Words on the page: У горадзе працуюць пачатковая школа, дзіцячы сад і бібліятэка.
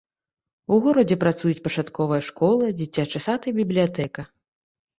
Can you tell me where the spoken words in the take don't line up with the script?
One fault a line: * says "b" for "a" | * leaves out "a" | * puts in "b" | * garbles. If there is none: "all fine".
all fine